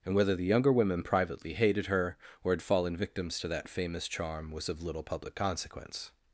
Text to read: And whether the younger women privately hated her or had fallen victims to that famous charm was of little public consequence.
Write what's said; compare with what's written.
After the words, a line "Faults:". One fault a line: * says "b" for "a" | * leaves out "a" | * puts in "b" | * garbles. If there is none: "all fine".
And whether the younger women privately hated her or had fallen victims to that famous charm was of little public consequence.
Faults:
all fine